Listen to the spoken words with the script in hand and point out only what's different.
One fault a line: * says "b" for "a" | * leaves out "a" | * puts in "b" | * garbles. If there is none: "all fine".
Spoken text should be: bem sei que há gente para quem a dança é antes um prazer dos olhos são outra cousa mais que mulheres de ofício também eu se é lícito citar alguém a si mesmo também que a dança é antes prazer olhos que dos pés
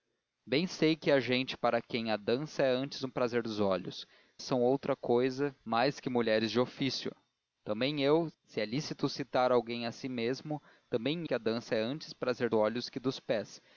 all fine